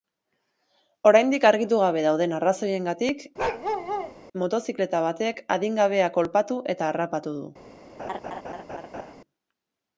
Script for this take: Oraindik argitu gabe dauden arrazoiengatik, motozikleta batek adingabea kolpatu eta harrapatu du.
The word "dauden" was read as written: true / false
true